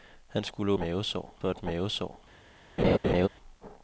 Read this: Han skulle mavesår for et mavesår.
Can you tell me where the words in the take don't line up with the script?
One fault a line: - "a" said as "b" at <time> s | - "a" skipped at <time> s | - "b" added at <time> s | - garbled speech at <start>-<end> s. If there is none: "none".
none